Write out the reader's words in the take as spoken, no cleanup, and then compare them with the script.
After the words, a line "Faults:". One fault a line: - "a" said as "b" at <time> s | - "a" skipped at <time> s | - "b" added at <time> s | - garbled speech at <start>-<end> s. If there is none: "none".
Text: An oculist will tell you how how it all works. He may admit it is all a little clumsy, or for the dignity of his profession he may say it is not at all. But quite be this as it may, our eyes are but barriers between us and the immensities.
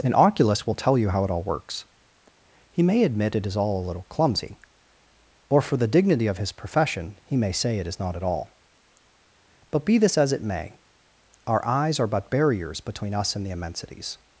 An oculist will tell you how it all works. He may admit it is all a little clumsy, or for the dignity of his profession he may say it is not at all. But be this as it may, our eyes are but barriers between us and the immensities.
Faults:
- "how" skipped at 1.2 s
- "quite" skipped at 9.8 s